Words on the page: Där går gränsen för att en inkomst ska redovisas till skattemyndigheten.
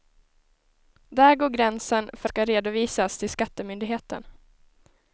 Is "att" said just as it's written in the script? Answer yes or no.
no